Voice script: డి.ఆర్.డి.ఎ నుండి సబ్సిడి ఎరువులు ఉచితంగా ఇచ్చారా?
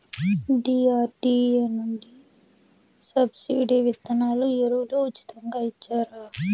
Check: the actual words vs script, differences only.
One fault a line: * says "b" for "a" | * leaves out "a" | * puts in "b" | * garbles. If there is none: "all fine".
* puts in "విత్తనాలు"